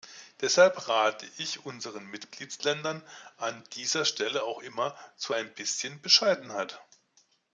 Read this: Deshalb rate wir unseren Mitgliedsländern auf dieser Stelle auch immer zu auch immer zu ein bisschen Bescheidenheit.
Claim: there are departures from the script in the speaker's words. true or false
true